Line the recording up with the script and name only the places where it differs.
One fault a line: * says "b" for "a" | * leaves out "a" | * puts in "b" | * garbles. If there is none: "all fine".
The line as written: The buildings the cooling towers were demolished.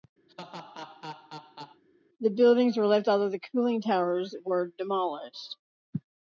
* puts in "were left although"